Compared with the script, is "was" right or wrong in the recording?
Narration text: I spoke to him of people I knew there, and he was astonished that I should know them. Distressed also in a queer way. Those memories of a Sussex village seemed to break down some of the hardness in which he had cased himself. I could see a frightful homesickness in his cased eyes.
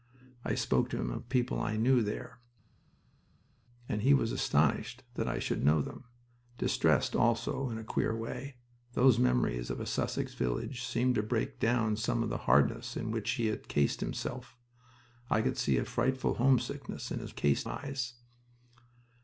right